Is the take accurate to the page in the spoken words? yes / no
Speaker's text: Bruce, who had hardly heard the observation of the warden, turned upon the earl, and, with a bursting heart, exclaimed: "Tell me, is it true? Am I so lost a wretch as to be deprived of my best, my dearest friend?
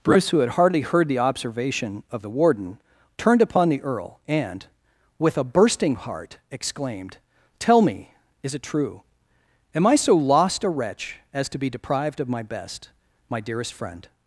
yes